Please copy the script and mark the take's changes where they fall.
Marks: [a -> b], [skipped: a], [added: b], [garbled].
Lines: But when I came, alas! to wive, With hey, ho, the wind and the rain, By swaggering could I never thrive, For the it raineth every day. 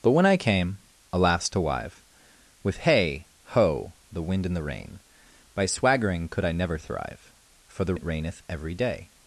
But when I came, alas! to wive, With hey, ho, the wind and the rain, By swaggering could I never thrive, For the it raineth every day.